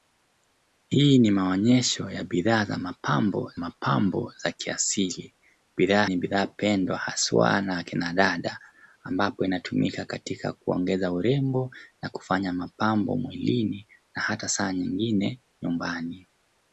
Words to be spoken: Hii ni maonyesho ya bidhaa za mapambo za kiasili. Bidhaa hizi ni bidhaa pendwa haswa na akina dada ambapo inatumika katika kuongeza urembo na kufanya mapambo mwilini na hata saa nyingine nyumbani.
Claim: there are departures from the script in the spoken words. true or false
true